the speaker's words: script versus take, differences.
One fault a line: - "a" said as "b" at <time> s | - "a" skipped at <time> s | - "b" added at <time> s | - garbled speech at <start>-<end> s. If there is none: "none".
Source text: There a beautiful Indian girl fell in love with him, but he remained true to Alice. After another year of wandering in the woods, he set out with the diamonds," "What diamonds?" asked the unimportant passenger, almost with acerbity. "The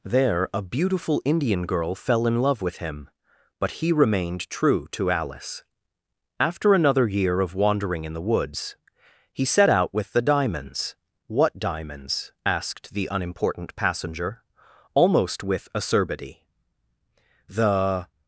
none